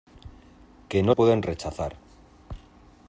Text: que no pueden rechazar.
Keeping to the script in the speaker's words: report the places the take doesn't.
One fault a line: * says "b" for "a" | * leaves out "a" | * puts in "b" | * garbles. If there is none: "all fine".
all fine